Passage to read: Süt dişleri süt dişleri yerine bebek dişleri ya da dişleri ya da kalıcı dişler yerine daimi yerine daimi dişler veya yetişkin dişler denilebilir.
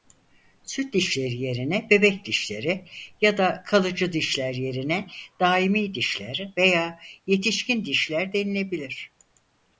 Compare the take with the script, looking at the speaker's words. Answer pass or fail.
fail